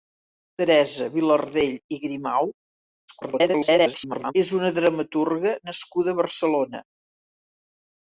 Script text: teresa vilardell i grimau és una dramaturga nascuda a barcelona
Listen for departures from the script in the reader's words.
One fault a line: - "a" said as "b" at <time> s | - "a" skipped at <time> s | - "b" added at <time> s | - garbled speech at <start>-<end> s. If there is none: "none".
- garbled speech at 3.1-4.3 s